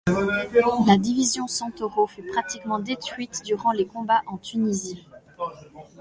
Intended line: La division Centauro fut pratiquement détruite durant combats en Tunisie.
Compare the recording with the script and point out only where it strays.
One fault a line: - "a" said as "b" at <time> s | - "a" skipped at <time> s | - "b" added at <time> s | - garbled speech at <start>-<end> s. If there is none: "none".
- "les" added at 3.7 s